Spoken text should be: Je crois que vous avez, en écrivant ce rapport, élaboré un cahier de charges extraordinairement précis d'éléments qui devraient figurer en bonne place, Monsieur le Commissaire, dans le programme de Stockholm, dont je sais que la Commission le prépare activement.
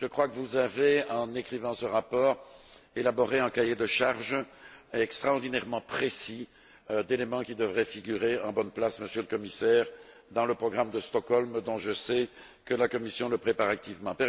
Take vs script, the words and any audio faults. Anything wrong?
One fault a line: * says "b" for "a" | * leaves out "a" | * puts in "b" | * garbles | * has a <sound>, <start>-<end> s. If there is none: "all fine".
all fine